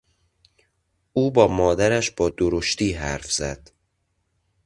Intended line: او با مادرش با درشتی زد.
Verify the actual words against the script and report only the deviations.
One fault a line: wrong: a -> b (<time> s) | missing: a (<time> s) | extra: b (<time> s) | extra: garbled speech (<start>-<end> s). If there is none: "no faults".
extra: حرف (2.9 s)